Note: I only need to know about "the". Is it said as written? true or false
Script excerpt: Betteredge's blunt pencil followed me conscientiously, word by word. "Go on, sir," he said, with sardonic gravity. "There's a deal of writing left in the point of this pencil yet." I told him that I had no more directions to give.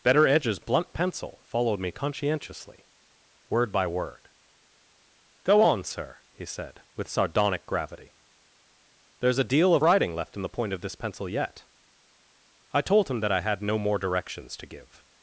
true